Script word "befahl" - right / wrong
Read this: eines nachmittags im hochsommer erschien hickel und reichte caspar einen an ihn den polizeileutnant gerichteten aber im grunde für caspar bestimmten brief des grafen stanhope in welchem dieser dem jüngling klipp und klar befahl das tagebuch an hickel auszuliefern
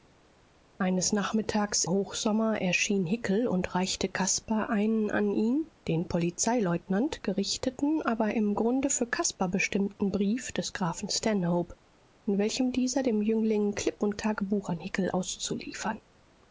wrong